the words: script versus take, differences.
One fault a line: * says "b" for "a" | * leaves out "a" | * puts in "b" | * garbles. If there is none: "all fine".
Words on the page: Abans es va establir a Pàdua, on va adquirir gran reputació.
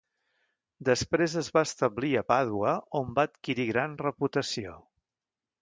* says "Després" for "Abans"